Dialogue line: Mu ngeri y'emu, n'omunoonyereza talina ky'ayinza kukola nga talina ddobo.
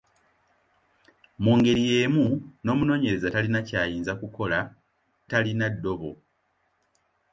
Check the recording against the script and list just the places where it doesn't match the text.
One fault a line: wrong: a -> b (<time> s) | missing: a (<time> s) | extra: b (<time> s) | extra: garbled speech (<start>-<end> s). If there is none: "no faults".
missing: nga (4.6 s)